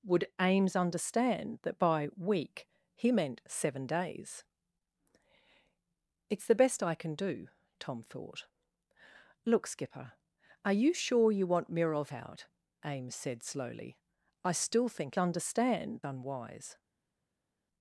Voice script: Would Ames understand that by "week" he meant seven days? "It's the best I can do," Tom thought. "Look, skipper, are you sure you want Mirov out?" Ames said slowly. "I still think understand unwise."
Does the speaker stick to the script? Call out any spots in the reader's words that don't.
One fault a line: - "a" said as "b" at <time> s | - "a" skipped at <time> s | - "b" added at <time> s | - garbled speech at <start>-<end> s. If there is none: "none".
none